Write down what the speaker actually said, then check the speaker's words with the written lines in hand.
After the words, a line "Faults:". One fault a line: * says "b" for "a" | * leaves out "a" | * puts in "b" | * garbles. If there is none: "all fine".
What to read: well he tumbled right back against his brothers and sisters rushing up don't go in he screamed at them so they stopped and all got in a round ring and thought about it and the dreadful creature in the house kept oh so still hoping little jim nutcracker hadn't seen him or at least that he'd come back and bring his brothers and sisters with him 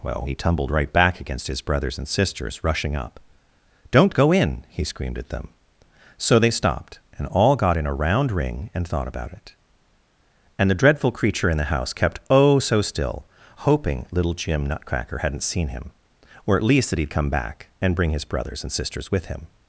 well he tumbled right back against his brothers and sisters rushing up don't go in he screamed at them so they stopped and all got in a round ring and thought about it and the dreadful creature in the house kept oh so still hoping little jim nutcracker hadn't seen him or at least that he'd come back and bring his brothers and sisters with him
Faults:
all fine